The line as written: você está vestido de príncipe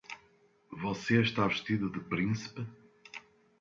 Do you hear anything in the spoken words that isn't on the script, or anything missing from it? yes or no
no